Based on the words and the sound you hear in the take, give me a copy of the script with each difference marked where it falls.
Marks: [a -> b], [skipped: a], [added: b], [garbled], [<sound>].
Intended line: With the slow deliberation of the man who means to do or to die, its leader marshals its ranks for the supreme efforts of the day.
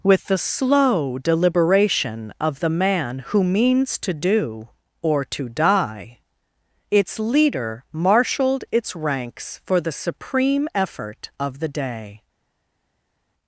With the slow deliberation of the man who means to do or to die, its leader [marshals -> marshaled] its ranks for the supreme [efforts -> effort] of the day.